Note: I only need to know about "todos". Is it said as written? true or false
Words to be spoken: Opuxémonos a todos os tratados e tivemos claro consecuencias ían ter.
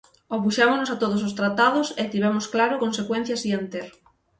true